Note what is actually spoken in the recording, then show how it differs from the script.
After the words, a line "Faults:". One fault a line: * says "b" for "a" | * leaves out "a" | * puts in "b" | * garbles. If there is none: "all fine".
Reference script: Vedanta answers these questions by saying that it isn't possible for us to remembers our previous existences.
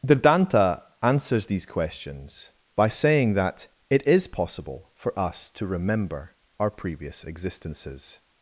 Vedanta answers these questions by saying that it is possible for us to remember our previous existences.
Faults:
* says "is" for "isn't"
* says "remember" for "remembers"